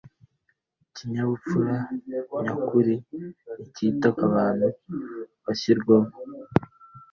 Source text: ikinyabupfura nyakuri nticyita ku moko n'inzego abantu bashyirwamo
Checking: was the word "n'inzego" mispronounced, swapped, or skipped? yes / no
yes